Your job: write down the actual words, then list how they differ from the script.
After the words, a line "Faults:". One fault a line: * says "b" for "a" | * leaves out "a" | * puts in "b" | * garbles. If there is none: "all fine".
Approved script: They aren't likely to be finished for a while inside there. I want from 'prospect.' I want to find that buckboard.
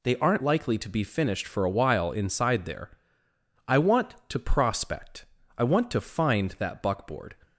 They aren't likely to be finished for a while inside there. I want to 'prospect.' I want to find that buckboard.
Faults:
* says "to" for "from"